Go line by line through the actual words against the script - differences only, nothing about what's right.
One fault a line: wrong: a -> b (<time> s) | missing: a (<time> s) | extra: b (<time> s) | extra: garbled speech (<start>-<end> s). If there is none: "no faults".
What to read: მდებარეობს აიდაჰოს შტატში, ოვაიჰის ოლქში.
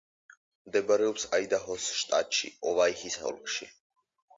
no faults